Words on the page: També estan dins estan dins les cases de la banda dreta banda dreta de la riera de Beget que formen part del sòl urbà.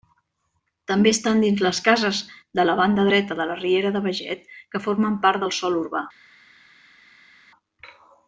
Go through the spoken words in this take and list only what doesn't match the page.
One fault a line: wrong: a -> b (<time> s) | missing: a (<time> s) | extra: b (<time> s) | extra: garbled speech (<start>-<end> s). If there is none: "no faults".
missing: estan dins (1.6 s)
missing: banda dreta (3.4 s)